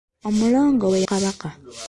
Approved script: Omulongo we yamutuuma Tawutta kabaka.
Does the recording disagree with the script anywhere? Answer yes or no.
yes